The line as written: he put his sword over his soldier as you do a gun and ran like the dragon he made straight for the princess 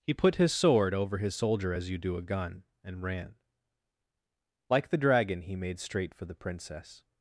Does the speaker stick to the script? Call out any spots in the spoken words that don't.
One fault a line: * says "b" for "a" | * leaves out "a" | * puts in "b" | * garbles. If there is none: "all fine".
all fine